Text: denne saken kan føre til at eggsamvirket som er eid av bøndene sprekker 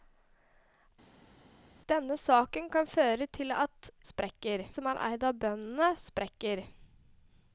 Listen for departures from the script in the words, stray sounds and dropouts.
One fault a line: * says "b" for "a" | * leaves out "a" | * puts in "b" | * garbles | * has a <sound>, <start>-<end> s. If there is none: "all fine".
* says "sprekker" for "eggsamvirket"